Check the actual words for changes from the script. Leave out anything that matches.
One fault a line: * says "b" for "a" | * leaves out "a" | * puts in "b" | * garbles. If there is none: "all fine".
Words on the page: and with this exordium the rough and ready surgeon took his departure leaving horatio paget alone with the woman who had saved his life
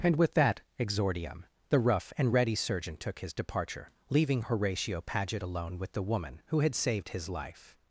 * says "that" for "this"